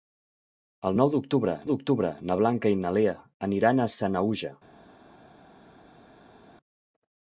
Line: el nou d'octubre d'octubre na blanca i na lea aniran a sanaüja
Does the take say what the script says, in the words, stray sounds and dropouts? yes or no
yes